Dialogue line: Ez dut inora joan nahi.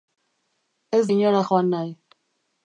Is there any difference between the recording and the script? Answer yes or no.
yes